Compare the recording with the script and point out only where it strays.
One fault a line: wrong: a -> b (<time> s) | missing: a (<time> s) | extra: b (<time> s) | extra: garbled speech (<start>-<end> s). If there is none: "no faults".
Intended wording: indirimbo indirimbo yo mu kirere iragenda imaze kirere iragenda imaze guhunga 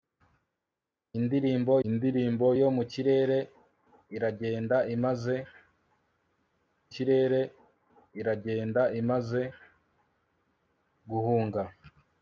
no faults